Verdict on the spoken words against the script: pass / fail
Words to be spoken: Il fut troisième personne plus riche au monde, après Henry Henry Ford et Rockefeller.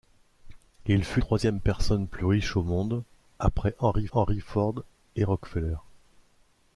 pass